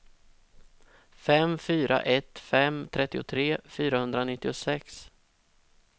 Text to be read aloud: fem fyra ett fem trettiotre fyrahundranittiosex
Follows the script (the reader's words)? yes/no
yes